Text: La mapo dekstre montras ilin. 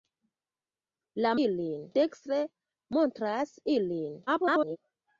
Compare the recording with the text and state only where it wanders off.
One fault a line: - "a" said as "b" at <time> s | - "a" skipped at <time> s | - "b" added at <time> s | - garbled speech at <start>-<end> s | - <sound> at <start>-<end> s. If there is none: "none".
- "mapo" said as "ilin" at 1.5 s
- garbled speech at 4.3-4.8 s